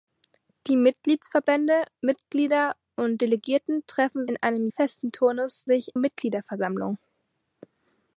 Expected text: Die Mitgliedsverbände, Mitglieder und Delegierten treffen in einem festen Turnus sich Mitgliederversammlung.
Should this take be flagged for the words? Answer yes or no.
no